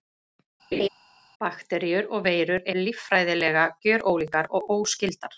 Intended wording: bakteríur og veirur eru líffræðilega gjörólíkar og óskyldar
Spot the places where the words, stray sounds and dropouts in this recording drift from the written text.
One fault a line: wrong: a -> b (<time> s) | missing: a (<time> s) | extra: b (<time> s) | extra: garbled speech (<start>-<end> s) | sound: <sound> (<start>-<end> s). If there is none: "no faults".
sound: laugh (0.7-0.9 s)
missing: eru (2.7 s)